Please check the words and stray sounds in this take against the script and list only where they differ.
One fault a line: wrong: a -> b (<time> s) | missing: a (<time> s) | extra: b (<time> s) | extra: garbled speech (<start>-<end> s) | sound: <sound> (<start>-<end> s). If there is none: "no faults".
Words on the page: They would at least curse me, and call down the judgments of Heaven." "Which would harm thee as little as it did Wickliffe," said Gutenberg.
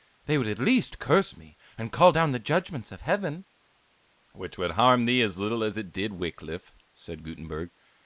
no faults